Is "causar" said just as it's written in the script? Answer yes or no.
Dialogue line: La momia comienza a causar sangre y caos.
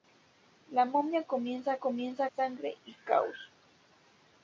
no